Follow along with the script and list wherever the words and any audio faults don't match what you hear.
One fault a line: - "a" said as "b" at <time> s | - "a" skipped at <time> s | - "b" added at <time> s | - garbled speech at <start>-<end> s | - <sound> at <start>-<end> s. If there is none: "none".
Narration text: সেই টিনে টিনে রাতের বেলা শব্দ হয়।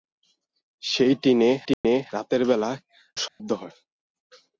- dropout at 1.7-1.8 s
- dropout at 3.3-3.4 s